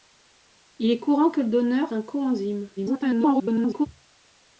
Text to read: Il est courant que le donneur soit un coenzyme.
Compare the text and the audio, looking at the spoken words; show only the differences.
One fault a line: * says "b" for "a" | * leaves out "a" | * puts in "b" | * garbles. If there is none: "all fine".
* leaves out "soit"
* garbles